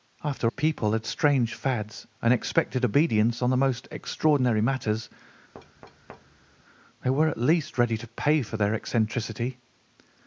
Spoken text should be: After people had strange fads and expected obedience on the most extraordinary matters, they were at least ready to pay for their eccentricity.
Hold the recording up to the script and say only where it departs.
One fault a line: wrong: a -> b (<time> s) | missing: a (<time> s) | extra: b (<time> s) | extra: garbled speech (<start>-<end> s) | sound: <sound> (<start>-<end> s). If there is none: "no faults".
sound: thud (5.5-6.6 s)